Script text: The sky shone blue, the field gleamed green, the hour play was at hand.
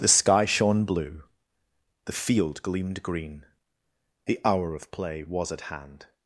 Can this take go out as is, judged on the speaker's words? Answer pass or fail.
fail